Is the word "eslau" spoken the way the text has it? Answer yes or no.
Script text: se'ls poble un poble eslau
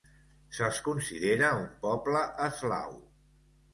yes